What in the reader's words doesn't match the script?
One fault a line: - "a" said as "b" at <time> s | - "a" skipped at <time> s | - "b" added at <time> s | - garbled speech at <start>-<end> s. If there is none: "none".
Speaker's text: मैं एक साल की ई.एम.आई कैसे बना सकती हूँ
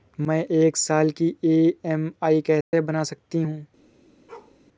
none